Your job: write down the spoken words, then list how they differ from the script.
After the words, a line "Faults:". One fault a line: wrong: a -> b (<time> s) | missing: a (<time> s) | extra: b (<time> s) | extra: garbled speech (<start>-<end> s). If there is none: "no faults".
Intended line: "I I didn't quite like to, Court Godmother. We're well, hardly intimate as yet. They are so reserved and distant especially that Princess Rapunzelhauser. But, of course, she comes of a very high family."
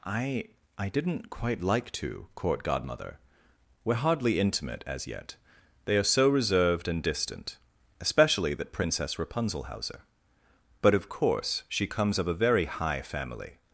"I I didn't quite like to, Court Godmother. We're hardly intimate as yet. They are so reserved and distant especially that Princess Rapunzelhauser. But, of course, she comes of a very high family."
Faults:
missing: well (4.0 s)